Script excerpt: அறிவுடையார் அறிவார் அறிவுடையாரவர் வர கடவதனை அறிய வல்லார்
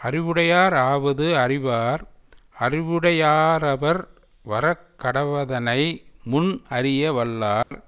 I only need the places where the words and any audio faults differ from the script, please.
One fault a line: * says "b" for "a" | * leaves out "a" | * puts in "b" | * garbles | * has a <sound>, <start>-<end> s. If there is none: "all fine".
* puts in "ஆவது"
* puts in "முன்"
* has a dropout, 7.6-7.7 s